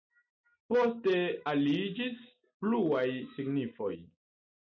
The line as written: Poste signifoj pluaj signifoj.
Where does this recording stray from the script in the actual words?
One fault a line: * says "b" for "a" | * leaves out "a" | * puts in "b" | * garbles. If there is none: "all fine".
* says "aliĝis" for "signifoj"